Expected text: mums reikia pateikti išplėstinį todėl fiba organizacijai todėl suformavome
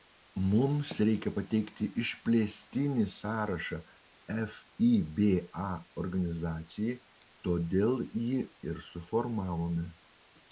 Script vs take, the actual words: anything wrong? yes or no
yes